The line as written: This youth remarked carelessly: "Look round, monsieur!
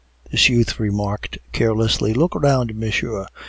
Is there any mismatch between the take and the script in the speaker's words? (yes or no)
no